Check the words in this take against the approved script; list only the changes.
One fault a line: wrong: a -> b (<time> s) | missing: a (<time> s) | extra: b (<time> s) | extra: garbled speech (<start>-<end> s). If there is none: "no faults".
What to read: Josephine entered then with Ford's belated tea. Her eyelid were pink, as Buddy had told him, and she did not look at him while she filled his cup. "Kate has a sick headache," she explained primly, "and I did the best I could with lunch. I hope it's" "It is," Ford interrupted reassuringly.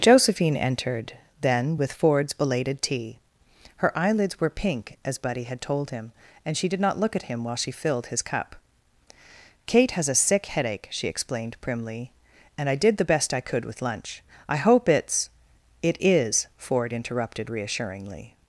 wrong: eyelid -> eyelids (4.0 s)